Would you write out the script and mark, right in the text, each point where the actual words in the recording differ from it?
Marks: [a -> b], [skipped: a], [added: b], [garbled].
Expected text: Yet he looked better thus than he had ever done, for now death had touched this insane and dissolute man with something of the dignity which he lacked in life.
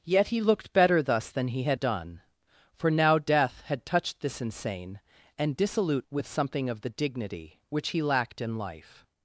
Yet he looked better thus than he had [skipped: ever] done, for now death had touched this insane and dissolute [skipped: man] with something of the dignity which he lacked in life.